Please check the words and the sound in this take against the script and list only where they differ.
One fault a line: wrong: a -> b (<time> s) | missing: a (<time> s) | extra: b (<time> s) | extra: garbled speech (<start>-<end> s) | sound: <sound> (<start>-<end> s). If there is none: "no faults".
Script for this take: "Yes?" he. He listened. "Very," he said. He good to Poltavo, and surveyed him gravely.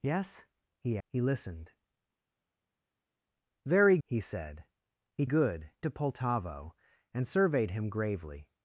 no faults